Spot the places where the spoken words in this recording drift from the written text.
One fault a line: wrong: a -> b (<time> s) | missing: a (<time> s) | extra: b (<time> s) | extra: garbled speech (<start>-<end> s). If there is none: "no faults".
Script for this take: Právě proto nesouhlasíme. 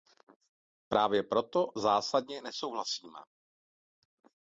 extra: zásadně (1.8 s)